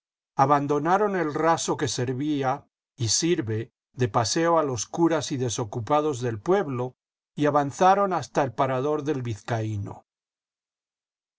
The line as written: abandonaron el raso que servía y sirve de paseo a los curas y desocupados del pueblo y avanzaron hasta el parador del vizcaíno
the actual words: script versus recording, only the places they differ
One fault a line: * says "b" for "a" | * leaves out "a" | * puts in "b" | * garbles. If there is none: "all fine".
all fine